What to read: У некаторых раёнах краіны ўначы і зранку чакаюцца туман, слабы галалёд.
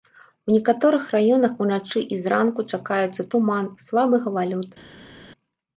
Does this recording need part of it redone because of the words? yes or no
yes